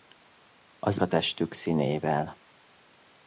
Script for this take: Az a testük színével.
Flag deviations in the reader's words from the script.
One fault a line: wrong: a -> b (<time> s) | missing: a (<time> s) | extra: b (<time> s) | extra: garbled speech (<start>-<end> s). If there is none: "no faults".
no faults